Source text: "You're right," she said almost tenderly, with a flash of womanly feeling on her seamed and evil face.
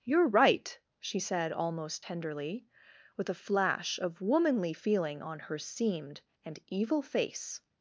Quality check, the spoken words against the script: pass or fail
pass